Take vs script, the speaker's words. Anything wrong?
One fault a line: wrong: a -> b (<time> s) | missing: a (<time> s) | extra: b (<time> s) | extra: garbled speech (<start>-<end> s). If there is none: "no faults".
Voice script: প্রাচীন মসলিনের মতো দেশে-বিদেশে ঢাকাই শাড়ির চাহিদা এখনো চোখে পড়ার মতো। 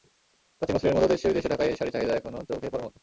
no faults